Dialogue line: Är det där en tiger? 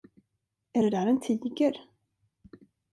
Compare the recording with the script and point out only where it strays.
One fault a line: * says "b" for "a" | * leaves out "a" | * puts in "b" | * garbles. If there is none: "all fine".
all fine